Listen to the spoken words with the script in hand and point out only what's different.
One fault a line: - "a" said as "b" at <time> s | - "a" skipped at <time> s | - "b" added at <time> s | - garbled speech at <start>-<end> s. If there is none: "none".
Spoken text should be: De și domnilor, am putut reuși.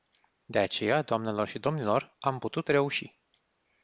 - "aceea doamnelor" added at 0.6 s